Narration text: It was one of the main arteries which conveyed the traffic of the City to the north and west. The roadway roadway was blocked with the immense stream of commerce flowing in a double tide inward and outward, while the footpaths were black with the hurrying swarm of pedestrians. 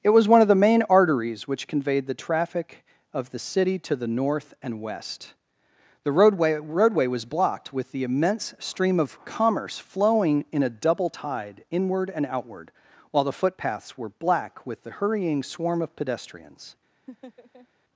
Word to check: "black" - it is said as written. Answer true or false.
true